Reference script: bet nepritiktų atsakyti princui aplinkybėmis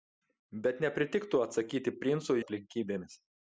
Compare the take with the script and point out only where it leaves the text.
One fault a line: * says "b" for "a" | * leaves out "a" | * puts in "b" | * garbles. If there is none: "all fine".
all fine